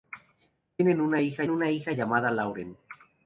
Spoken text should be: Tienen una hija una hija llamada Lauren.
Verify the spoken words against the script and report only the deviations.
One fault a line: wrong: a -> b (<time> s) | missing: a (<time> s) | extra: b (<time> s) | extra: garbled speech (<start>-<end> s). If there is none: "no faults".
no faults